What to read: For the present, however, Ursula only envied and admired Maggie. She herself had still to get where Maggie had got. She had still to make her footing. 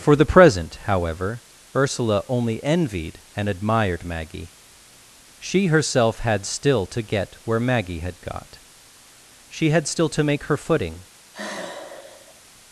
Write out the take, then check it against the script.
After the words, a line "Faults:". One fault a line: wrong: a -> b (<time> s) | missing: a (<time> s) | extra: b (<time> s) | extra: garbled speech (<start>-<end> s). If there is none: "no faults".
For the present, however, Ursula only envied and admired Maggie. She herself had still to get where Maggie had got. She had still to make her footing.
Faults:
no faults